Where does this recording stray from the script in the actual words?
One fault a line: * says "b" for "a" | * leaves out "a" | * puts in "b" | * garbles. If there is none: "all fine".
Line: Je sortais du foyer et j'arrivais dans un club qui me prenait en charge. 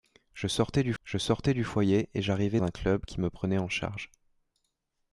* puts in "je sortais du"
* leaves out "dans"